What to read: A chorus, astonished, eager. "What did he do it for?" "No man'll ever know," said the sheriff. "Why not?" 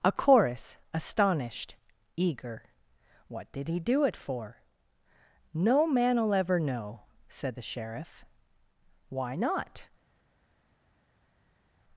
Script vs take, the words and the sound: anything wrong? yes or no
no